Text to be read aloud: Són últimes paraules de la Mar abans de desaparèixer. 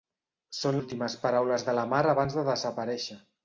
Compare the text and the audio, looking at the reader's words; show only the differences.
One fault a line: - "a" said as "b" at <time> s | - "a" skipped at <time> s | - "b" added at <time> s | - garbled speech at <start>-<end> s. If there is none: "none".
none